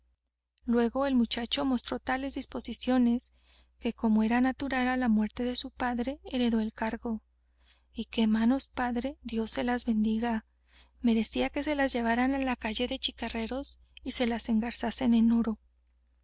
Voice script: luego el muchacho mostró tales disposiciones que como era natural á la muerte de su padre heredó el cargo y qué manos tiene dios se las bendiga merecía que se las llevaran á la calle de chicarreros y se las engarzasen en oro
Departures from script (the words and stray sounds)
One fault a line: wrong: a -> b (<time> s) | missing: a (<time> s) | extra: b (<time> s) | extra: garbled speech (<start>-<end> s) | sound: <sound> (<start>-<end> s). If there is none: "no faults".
wrong: tiene -> padre (8.7 s)